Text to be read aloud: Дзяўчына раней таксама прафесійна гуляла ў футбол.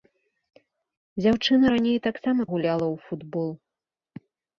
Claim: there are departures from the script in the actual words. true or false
true